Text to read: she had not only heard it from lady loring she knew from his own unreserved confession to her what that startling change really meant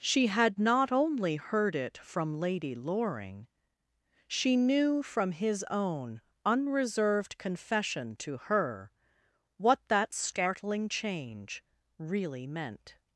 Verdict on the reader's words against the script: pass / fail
pass